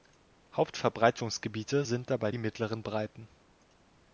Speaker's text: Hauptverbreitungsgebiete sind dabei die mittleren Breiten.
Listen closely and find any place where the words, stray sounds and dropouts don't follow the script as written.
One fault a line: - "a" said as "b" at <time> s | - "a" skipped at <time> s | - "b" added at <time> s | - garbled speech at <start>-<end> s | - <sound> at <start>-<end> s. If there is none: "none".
none